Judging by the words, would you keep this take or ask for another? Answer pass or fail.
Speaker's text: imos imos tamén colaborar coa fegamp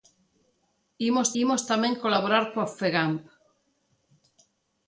pass